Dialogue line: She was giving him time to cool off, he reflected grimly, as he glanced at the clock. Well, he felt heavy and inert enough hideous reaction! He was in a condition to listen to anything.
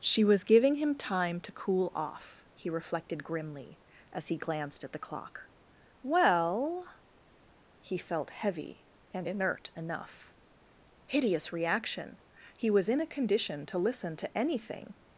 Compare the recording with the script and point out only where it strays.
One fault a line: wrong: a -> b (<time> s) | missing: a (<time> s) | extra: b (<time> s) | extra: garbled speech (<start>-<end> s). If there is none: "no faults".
no faults